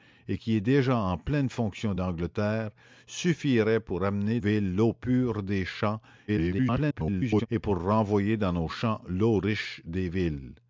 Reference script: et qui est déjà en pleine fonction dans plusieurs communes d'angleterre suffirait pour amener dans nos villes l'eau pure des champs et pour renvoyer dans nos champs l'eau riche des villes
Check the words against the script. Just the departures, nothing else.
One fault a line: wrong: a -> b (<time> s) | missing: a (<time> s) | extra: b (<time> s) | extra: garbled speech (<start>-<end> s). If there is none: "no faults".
missing: dans plusieurs communes (1.9 s)
missing: dans nos (4.4 s)
extra: garbled speech (6.3-7.5 s)